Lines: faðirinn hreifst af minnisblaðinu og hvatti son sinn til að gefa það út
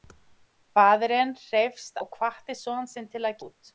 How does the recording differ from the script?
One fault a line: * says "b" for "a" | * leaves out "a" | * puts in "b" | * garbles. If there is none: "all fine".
* leaves out "af minnisblaðinu"
* leaves out "gefa það"